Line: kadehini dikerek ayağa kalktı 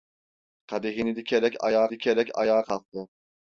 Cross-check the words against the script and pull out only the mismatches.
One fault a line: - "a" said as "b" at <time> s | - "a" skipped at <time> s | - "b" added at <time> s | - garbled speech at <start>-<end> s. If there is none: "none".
- "dikerek ayağa" added at 1.9 s